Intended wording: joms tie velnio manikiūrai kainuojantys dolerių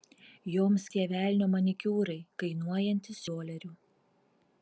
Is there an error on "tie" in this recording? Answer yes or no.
no